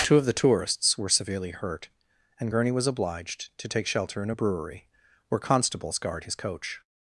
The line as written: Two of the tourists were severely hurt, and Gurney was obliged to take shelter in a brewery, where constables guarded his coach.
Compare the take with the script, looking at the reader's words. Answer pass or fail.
fail